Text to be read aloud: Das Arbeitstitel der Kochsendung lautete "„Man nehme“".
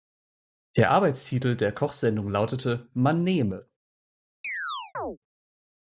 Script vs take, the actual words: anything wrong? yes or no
yes